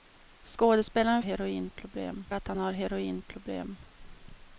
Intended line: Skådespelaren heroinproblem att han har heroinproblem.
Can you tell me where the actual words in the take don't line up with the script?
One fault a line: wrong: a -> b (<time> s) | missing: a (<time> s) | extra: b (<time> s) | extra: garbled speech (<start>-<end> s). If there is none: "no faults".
no faults